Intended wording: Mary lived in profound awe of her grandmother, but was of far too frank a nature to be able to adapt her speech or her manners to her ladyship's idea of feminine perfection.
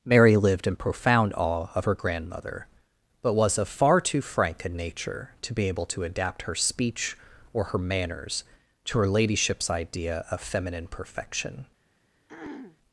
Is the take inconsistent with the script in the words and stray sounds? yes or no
yes